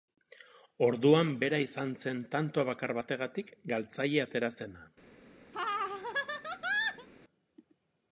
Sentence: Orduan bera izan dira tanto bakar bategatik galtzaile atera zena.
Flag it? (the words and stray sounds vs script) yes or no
yes